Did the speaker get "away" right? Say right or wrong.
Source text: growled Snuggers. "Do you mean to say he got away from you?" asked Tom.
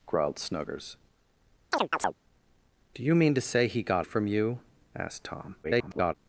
wrong